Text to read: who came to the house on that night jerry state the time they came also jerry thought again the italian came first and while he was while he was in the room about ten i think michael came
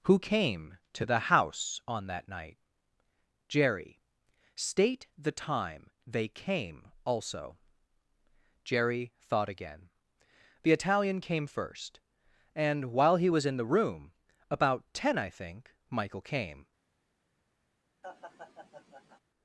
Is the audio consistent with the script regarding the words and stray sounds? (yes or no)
no